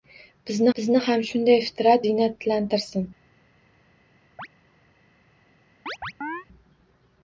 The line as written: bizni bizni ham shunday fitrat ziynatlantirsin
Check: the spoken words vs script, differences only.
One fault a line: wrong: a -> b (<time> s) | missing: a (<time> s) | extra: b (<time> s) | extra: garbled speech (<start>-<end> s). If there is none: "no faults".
no faults